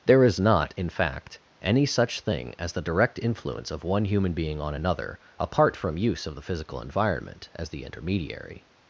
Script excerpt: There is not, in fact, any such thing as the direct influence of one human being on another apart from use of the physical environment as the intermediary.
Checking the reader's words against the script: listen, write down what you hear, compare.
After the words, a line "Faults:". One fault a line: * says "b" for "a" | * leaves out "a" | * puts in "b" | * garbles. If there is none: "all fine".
There is not, in fact, any such thing as the direct influence of one human being on another apart from use of the physical environment as the intermediary.
Faults:
all fine